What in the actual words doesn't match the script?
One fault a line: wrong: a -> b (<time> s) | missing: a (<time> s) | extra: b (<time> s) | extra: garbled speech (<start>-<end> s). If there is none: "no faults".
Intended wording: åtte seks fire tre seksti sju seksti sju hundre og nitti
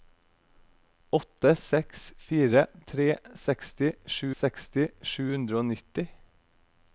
no faults